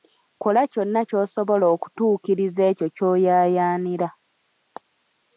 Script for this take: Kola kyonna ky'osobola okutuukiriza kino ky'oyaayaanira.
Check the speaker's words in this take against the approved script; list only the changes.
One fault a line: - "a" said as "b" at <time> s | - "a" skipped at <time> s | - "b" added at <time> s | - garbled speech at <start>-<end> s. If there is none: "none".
- "kino" said as "ekyo" at 2.7 s